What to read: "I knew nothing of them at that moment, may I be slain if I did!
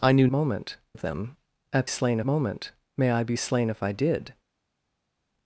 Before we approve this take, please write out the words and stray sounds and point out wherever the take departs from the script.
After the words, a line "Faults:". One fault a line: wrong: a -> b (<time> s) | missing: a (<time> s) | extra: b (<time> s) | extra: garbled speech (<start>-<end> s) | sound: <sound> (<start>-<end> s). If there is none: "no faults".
"I knew moment of them at slain moment, may I be slain if I did!
Faults:
wrong: nothing -> moment (0.3 s)
wrong: that -> slain (1.9 s)